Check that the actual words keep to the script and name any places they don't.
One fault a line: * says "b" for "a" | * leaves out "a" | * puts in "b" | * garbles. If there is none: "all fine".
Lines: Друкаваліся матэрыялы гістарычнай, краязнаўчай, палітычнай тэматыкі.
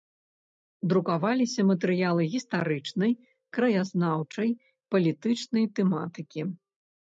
all fine